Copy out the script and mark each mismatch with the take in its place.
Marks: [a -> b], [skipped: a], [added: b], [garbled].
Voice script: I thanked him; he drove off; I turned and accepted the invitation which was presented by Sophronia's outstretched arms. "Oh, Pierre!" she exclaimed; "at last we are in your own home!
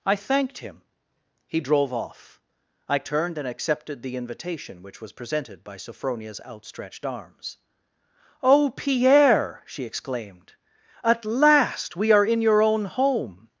I thanked him; he drove off; I turned and accepted the invitation which was presented by Sophronia's outstretched arms. "Oh, Pierre!" she exclaimed; "at last we are in your own home!